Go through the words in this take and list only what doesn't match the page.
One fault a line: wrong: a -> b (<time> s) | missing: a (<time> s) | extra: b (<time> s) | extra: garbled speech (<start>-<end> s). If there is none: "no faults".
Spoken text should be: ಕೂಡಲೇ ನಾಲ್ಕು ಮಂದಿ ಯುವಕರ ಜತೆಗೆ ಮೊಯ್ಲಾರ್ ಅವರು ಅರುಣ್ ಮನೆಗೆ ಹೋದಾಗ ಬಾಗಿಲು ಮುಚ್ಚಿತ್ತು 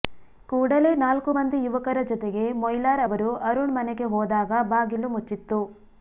no faults